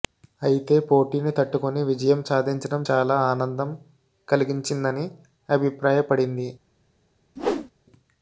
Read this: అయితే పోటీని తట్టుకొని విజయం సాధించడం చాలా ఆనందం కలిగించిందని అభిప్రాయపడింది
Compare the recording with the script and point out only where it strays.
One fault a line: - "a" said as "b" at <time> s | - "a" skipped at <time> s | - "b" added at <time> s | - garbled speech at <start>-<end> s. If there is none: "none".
none